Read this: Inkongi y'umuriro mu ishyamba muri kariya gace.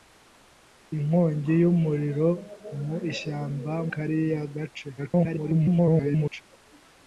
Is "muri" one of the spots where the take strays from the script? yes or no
yes